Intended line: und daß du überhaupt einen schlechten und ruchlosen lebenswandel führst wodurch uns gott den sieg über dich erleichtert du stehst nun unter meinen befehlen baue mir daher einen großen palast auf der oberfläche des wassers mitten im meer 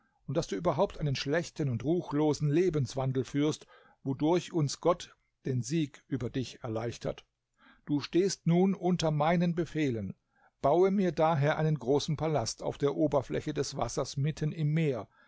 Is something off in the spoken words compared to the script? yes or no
no